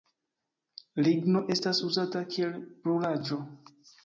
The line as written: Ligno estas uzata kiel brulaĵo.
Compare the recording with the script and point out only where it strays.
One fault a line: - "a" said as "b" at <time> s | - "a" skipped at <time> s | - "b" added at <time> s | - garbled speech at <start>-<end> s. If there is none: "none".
none